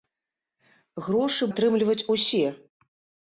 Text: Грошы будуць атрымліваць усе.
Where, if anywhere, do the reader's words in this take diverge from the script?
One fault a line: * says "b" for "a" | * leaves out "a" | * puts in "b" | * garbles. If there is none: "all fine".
* leaves out "будуць"